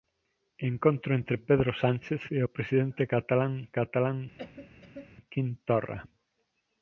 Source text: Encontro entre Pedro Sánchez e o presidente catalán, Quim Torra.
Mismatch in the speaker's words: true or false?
true